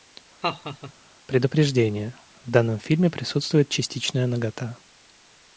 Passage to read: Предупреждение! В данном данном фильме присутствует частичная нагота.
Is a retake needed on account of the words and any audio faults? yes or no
yes